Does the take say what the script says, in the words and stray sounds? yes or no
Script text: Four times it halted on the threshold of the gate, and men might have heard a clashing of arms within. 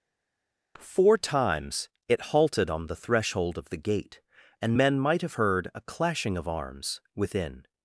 yes